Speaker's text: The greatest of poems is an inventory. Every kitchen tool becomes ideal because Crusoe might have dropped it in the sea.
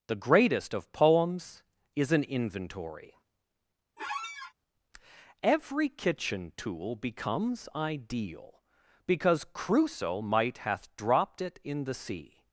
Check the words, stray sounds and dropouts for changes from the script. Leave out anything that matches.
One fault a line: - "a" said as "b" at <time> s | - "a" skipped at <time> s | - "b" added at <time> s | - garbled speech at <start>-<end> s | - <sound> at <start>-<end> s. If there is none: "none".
- squeak at 4.0-4.5 s
- "have" said as "hath" at 10.6 s